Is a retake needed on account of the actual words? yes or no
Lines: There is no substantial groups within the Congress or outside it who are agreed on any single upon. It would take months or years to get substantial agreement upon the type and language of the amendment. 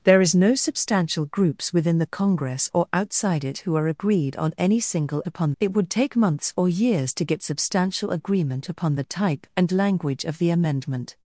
no